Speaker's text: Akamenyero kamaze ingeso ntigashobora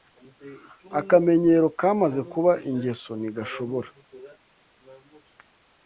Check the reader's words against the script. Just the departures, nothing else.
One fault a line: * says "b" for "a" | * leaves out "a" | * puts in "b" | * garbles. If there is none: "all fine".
* puts in "kuba"